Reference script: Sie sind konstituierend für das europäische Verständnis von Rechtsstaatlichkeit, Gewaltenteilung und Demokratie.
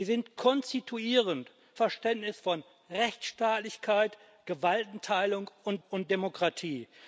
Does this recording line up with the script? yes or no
no